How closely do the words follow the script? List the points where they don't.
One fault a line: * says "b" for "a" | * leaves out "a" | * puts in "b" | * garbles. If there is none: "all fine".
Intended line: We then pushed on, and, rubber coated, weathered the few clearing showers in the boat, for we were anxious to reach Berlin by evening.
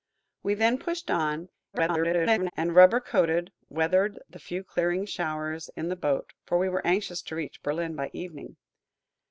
* garbles